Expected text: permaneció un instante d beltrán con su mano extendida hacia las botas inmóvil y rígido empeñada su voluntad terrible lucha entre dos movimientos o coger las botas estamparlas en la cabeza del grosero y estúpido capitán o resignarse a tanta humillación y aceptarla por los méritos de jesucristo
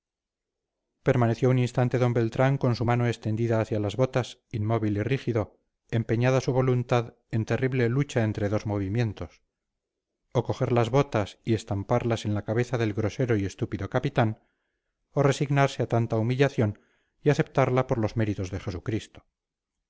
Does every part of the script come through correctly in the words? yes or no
no